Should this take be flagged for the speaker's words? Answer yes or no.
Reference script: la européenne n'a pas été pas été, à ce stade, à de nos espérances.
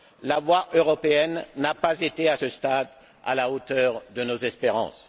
yes